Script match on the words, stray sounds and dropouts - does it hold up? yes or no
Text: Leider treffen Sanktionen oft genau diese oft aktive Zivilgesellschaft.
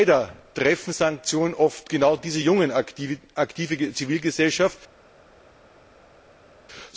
no